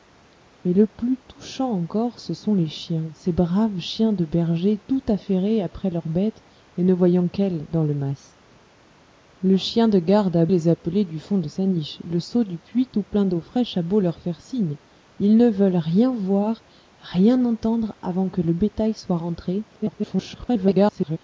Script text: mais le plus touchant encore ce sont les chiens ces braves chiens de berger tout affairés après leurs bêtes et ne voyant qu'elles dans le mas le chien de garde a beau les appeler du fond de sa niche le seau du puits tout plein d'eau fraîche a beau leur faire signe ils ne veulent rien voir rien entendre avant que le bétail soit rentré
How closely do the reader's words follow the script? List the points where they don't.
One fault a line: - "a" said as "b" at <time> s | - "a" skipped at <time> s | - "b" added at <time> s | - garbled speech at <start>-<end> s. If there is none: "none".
- "beau" skipped at 10.4 s
- garbled speech at 19.7-21.2 s